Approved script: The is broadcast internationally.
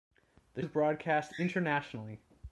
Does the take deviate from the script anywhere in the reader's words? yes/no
no